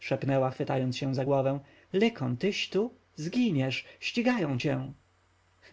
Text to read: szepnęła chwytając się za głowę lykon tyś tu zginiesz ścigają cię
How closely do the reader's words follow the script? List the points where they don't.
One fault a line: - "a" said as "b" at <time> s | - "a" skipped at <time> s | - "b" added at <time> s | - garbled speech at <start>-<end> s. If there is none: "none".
none